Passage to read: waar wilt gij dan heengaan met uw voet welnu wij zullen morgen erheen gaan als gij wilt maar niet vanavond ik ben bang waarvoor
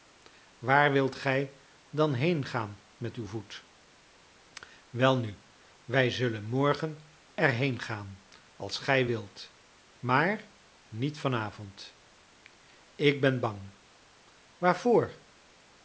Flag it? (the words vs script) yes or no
no